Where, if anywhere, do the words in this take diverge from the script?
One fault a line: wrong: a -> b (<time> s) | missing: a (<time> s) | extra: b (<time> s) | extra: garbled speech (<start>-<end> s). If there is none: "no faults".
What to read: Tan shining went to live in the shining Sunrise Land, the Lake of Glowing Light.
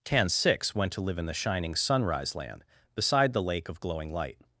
wrong: shining -> six (0.3 s)
extra: beside (3.0 s)